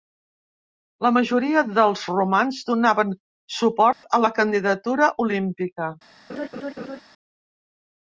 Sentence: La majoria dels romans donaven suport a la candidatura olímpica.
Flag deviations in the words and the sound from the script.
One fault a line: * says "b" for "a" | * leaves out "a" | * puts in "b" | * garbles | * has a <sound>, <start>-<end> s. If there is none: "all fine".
* has a dropout, 3.9-4.0 s
* has a laugh, 6.3-7.0 s